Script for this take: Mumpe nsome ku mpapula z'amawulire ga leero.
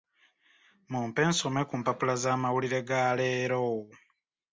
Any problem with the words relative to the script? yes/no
no